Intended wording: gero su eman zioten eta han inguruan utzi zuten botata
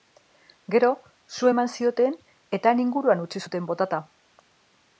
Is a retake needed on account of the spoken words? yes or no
no